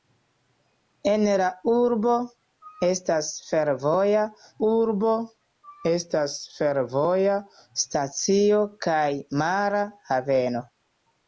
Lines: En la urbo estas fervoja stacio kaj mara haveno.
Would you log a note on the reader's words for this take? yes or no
yes